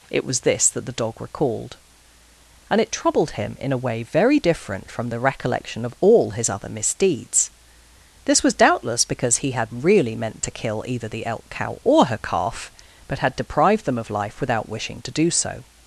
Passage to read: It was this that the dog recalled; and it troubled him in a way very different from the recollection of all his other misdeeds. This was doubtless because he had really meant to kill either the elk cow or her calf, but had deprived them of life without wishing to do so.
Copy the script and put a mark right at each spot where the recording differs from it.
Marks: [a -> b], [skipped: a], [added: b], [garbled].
It was this that the dog recalled; and it troubled him in a way very different from the recollection of all his other misdeeds. This was doubtless because he had really meant to kill either the elk cow or her calf, but had deprived them of life without wishing to do so.